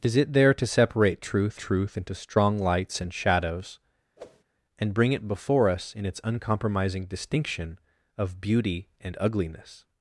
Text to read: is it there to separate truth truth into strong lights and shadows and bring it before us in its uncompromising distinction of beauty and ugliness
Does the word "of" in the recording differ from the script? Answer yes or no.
no